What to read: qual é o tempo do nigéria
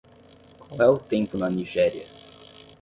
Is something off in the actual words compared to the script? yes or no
yes